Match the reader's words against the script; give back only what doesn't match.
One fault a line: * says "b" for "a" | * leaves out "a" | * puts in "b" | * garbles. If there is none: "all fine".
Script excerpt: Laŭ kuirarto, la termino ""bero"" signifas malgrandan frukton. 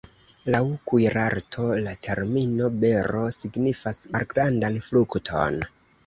all fine